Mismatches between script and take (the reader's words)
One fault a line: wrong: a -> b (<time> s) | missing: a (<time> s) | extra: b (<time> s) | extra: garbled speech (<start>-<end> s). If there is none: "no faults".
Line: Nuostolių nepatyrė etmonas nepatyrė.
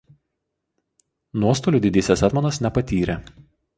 wrong: nepatyrė -> didysis (1.9 s)